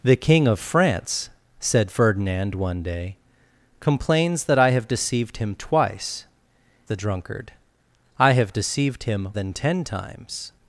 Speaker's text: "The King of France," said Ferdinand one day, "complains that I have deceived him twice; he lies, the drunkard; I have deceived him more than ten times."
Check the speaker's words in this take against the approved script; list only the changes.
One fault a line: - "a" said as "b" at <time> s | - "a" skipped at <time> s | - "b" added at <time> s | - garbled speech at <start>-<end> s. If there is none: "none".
- "he lies" skipped at 6.2 s
- "more" skipped at 9.3 s